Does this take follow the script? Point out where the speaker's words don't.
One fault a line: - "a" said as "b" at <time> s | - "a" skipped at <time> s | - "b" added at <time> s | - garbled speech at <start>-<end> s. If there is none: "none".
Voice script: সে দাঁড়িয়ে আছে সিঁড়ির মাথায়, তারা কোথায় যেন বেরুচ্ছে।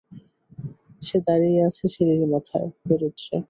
- "তারা কোথায় যেন" skipped at 2.7 s